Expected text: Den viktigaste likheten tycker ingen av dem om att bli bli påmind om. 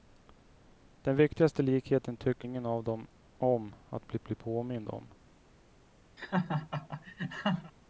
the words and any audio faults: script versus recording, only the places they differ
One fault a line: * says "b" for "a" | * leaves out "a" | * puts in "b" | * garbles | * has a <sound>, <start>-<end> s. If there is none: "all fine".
* has a laugh, 6.2-7.7 s